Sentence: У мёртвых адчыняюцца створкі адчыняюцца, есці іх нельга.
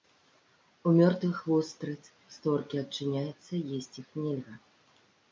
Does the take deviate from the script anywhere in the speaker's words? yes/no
yes